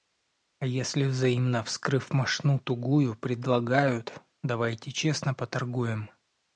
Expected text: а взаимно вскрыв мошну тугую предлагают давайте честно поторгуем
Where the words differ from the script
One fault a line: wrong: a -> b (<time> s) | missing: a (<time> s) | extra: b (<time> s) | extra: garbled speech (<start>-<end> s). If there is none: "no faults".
extra: если (0.7 s)